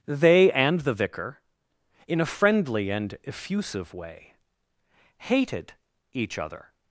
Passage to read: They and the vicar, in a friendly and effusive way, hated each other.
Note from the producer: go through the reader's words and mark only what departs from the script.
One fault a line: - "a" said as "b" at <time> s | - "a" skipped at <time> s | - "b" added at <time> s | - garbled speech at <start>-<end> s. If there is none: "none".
none